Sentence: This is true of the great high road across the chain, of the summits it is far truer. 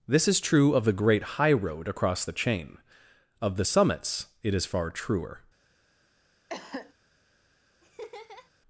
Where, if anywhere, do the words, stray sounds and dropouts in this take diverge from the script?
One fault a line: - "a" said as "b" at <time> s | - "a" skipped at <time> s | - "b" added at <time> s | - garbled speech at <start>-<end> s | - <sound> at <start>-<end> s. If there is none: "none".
- cough at 6.5-6.9 s
- laugh at 7.8-8.5 s